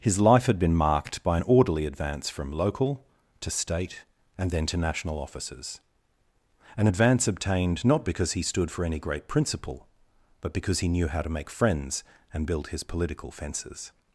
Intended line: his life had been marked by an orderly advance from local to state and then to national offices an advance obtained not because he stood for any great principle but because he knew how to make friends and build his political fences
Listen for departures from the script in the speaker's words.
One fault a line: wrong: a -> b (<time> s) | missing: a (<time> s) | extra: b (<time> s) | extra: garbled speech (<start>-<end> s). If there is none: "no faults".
no faults